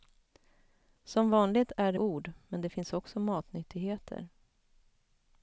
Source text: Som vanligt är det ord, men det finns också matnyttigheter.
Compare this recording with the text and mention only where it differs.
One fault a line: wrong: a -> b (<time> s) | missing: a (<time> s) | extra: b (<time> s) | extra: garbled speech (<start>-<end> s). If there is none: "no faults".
no faults